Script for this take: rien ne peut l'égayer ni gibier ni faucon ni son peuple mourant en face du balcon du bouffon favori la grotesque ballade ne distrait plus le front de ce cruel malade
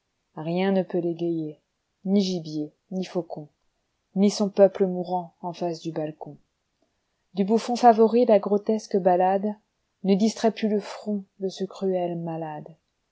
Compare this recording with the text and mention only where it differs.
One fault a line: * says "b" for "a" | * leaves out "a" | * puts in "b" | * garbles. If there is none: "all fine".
all fine